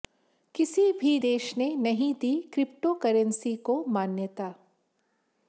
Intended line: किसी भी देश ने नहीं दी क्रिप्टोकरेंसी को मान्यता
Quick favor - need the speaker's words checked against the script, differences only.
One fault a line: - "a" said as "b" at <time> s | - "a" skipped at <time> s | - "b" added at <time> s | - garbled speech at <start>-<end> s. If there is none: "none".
none